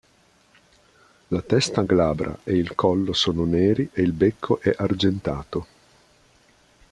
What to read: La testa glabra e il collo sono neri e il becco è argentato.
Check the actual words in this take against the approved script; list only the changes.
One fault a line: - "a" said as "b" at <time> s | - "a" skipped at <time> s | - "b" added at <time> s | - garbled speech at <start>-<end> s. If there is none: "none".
none